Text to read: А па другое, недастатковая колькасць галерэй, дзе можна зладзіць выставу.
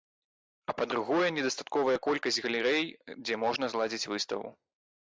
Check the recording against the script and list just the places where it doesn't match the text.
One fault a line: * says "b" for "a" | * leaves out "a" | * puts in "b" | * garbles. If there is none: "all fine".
all fine